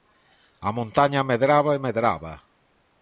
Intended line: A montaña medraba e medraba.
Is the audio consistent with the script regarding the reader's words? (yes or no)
yes